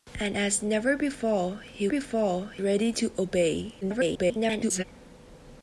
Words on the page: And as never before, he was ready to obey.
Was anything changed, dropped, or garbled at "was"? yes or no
yes